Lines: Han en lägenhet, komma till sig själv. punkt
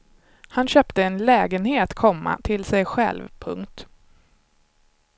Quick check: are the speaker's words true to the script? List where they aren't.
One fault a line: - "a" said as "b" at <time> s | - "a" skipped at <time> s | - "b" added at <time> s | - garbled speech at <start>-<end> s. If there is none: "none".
- "köpte" added at 0.7 s